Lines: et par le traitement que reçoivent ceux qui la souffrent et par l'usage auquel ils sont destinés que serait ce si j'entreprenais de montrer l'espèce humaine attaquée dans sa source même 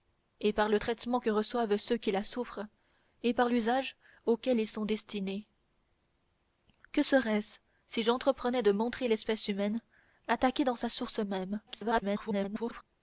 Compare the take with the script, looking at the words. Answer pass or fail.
fail